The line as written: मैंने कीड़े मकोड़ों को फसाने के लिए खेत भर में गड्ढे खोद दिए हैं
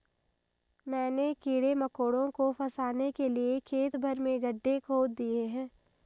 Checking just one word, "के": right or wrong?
right